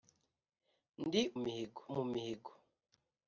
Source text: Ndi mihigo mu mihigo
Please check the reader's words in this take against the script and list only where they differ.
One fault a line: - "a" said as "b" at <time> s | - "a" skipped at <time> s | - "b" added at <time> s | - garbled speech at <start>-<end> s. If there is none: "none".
none